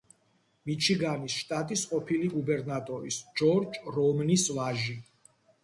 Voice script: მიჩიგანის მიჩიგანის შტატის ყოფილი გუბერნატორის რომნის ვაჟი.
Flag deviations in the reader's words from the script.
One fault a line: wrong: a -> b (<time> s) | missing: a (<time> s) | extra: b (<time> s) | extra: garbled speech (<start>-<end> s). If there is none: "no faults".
missing: მიჩიგანის (1.4 s)
extra: ჯორჯ (3.4 s)